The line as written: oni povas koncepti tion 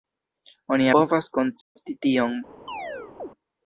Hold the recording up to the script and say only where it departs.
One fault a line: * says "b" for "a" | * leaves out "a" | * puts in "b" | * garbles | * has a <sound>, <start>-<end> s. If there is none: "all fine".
* has a dropout, 1.6-1.8 s
* has a chirp, 2.7-3.3 s